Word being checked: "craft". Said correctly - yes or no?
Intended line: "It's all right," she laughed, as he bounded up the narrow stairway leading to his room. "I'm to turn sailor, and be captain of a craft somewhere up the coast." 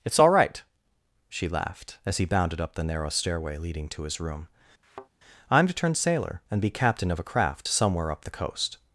yes